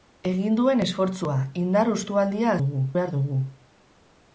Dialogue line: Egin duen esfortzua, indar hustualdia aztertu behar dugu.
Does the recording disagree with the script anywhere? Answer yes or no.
yes